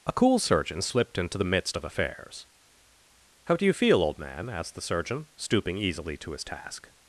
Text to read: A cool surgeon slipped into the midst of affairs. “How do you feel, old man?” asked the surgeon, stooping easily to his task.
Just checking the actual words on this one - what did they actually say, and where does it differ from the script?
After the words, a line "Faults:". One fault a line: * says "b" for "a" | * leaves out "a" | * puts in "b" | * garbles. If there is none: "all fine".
A cool surgeon slipped into the midst of affairs. “How do you feel, old man?” asked the surgeon, stooping easily to his task.
Faults:
all fine